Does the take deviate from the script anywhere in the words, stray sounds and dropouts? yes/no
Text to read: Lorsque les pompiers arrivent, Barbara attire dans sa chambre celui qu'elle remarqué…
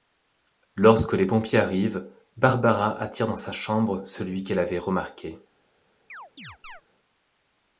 yes